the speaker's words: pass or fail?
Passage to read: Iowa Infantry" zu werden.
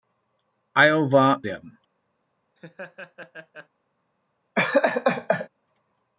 fail